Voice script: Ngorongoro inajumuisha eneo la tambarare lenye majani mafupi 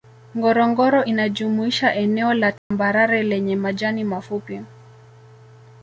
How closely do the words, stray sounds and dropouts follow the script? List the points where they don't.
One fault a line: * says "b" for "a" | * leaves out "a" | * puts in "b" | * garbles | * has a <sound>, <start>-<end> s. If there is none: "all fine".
* has a dropout, 2.6-2.7 s